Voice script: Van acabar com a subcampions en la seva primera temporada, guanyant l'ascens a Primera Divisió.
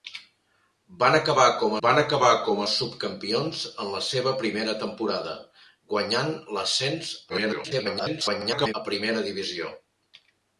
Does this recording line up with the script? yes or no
no